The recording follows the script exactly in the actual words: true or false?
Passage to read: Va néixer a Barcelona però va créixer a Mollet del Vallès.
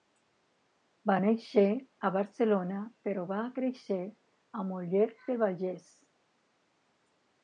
true